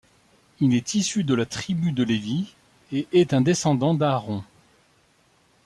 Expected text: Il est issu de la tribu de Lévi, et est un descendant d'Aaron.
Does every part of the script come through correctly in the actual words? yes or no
yes